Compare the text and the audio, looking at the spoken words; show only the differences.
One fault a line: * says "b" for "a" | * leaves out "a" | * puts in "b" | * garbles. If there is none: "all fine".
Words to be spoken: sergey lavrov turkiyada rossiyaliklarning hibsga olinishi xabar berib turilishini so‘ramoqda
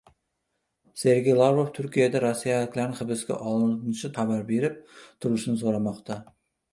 all fine